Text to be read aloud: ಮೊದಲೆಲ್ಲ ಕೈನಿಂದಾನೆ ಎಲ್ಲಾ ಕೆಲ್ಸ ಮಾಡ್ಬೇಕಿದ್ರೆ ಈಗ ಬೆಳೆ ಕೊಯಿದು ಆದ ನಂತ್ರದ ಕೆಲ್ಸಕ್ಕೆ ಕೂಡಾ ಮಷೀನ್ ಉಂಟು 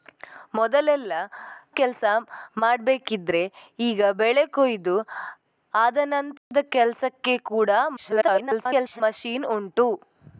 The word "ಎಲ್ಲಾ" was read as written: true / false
false